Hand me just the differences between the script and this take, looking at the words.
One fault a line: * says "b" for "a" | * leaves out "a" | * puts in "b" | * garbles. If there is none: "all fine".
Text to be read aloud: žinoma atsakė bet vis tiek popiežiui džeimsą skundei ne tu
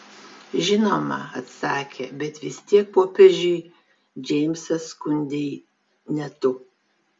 all fine